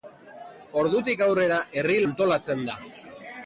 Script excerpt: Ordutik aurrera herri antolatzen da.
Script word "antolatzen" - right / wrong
right